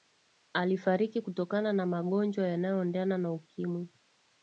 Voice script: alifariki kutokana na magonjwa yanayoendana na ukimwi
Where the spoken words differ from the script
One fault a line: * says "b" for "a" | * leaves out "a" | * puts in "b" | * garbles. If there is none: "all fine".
all fine